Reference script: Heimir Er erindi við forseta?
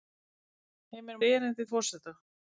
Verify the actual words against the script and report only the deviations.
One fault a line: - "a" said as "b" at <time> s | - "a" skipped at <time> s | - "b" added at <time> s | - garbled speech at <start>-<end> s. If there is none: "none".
none